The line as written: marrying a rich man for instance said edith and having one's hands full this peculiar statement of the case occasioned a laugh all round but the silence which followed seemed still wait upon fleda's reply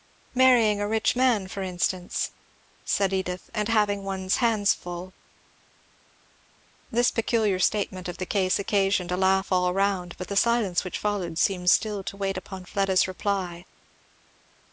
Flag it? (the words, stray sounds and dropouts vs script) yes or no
yes